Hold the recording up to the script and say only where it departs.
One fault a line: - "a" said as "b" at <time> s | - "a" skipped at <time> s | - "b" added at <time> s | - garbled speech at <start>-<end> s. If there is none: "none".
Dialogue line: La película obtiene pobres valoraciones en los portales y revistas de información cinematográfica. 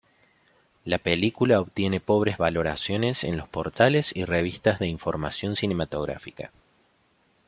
none